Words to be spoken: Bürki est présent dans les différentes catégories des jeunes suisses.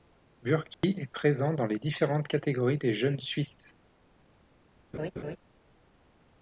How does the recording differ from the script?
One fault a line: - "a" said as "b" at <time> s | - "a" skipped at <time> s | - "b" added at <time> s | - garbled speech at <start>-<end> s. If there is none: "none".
none